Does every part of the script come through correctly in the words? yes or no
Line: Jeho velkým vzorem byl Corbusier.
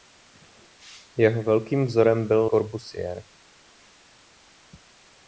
yes